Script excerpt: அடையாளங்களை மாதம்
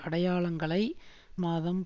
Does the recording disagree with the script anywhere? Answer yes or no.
no